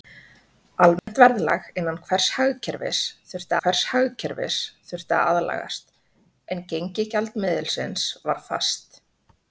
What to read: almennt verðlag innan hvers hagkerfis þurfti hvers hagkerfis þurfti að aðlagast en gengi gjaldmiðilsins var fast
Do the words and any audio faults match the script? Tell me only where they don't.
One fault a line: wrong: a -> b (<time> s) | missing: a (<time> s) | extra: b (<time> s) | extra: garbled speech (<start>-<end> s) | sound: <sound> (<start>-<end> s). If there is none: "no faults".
sound: dropout (1.0-1.1 s)